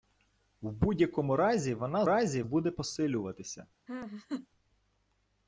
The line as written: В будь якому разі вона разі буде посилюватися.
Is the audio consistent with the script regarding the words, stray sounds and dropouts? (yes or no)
no